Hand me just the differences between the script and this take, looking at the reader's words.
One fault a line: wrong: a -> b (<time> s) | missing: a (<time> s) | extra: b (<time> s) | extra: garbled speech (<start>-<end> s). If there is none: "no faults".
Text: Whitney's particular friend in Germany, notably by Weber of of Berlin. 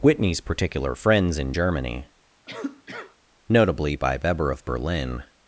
wrong: friend -> friends (0.9 s)
missing: of (4.6 s)